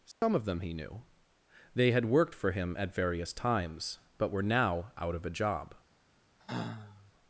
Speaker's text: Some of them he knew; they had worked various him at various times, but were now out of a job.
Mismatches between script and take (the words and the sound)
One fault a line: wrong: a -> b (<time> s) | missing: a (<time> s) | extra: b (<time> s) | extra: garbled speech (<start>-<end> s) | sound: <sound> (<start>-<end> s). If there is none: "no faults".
sound: dropout (0.1-0.2 s)
wrong: various -> for (2.3 s)
sound: sigh (6.4-7.1 s)